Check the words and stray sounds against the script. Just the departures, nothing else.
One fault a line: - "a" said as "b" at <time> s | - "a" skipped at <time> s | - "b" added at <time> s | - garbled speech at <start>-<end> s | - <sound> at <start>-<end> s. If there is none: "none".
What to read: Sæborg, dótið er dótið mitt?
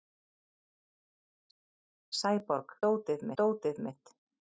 none